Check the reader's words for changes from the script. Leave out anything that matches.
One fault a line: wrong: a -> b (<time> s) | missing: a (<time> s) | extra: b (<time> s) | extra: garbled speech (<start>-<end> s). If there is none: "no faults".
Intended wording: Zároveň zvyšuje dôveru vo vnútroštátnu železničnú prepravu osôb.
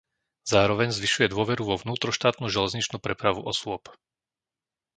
no faults